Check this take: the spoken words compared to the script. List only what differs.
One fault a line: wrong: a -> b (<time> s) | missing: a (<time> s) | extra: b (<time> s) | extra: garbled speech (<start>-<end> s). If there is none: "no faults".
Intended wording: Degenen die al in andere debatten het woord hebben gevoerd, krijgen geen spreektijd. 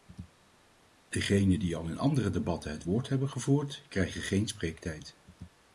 no faults